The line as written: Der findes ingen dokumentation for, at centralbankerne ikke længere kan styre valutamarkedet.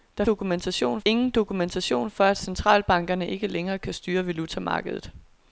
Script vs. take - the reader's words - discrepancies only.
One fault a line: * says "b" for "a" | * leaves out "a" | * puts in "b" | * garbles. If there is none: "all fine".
* says "dokumentation" for "findes"